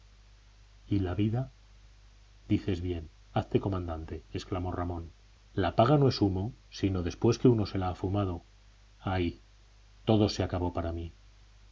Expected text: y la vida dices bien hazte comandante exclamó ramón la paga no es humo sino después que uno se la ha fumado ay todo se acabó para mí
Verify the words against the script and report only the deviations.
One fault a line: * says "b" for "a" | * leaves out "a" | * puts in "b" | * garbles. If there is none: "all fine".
all fine